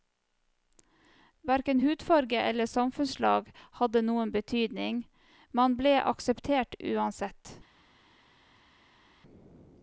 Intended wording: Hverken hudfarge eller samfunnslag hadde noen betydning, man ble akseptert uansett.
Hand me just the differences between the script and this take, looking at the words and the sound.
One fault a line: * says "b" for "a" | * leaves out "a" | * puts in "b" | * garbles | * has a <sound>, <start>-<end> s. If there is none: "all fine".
all fine